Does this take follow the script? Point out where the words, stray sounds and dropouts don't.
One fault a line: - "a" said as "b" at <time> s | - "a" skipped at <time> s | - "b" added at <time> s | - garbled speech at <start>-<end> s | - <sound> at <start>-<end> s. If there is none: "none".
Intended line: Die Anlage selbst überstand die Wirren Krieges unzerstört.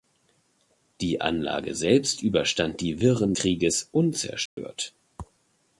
- dropout at 4.5-4.6 s